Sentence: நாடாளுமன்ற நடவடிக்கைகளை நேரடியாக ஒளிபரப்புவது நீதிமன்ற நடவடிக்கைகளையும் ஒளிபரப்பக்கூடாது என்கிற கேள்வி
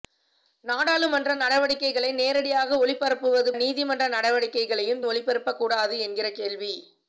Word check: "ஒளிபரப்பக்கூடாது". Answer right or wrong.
right